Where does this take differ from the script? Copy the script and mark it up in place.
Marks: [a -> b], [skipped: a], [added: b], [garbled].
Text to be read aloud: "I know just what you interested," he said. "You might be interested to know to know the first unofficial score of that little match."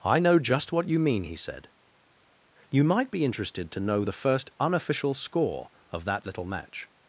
"I know just what you [interested," -> mean] he said. "You might be interested to know [skipped: to know] the first unofficial score of that little match."